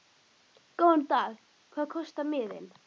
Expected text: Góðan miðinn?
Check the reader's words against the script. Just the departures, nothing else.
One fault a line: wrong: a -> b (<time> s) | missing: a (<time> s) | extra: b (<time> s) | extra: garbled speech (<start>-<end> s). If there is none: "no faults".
extra: dag Hvað kostar (1.1 s)